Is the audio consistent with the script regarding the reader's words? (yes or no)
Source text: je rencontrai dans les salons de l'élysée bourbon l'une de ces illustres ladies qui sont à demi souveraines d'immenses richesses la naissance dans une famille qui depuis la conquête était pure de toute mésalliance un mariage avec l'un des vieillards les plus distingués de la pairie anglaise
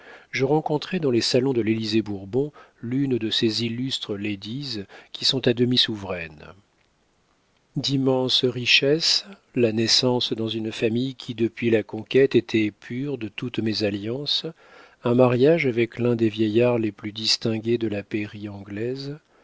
yes